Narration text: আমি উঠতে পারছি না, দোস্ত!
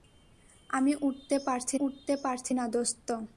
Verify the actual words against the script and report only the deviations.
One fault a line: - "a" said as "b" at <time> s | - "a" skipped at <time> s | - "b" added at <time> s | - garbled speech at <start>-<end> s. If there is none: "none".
- "উঠতে পারছি" added at 1.8 s